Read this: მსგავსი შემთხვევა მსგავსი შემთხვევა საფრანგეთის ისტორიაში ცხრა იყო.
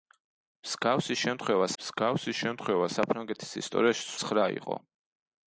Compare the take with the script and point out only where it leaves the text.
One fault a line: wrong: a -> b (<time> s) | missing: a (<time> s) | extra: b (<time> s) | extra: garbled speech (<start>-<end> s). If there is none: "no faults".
no faults